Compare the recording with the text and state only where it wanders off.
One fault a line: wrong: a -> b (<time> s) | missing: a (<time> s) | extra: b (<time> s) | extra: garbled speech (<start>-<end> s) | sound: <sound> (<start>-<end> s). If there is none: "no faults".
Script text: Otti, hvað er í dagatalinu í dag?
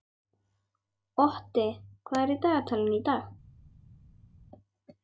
no faults